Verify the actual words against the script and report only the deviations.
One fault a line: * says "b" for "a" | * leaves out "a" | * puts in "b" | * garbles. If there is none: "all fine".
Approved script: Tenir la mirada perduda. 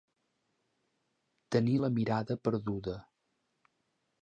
all fine